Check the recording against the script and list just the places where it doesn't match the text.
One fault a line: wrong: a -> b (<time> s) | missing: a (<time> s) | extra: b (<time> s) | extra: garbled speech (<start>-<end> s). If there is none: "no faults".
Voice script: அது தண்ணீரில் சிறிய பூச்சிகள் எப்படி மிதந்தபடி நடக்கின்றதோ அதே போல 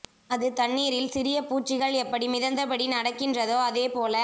no faults